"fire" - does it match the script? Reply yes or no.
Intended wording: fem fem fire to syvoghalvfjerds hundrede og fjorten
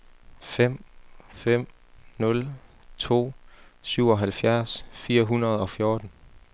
no